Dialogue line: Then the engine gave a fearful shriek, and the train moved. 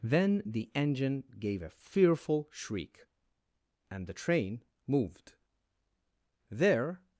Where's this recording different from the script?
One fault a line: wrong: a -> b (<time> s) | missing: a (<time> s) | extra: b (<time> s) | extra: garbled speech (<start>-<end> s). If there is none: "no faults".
extra: There (6.5 s)